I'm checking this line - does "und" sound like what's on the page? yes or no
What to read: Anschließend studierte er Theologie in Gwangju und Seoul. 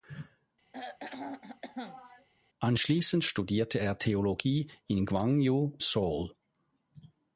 no